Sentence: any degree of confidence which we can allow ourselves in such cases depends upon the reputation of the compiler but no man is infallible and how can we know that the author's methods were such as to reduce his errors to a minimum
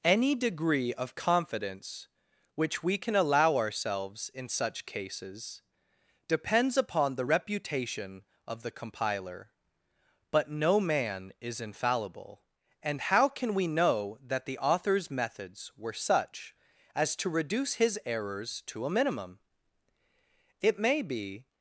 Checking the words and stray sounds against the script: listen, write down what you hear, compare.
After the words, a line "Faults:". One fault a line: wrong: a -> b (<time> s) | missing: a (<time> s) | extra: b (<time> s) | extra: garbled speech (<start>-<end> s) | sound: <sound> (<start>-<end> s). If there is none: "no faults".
any degree of confidence which we can allow ourselves in such cases depends upon the reputation of the compiler but no man is infallible and how can we know that the author's methods were such as to reduce his errors to a minimum it may be
Faults:
extra: it may be (20.6 s)